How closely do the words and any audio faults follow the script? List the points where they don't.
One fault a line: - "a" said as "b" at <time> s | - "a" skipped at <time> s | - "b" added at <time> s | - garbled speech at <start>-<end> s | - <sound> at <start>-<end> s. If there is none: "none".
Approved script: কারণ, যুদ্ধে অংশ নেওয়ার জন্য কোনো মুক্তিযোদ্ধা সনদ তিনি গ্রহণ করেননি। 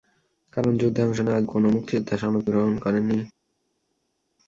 - "জন্য" skipped at 1.4 s
- "তিনি" skipped at 2.4 s